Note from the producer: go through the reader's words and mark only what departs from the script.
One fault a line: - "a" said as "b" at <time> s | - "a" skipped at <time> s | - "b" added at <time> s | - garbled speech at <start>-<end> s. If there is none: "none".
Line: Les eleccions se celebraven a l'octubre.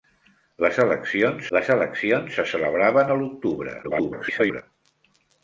- "les eleccions" added at 1.5 s
- garbled speech at 3.8-4.6 s